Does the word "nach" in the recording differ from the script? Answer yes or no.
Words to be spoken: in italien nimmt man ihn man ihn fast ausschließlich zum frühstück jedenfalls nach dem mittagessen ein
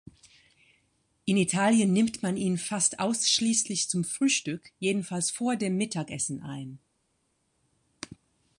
yes